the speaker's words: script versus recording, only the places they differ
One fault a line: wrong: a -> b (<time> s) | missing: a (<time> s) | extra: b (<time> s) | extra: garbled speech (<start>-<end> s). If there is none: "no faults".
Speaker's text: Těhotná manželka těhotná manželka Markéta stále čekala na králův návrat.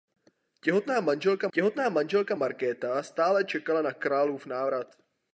no faults